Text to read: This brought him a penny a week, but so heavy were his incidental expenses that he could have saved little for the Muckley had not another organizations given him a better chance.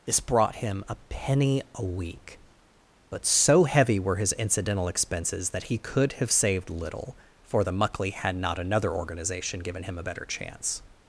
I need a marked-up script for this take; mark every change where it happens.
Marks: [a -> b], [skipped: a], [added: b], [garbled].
This brought him a penny a week, but so heavy were his incidental expenses that he could have saved little for the Muckley had not another [organizations -> organization] given him a better chance.